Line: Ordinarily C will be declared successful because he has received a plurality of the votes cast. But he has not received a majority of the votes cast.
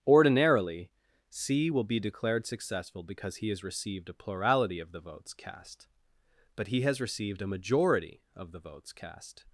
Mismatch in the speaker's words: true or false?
true